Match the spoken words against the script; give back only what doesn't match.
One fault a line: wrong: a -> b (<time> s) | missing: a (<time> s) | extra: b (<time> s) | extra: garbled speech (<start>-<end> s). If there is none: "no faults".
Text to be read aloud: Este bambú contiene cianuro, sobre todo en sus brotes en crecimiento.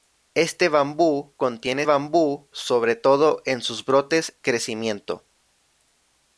wrong: cianuro -> bambú (1.8 s)
missing: en (4.4 s)